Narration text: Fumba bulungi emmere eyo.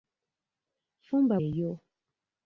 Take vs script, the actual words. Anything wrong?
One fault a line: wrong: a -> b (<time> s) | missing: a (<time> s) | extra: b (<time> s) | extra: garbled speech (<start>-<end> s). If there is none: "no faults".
missing: bulungi emmere (1.4 s)